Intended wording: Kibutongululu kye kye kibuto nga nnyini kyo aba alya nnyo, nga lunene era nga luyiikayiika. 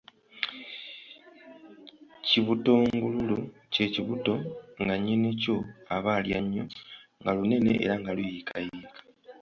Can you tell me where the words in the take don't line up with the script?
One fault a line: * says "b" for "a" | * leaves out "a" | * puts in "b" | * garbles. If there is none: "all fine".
* leaves out "kye"